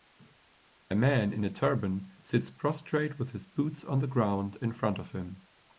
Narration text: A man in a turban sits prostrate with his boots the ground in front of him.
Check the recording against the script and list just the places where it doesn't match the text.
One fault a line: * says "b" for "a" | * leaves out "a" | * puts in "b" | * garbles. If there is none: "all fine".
* puts in "on"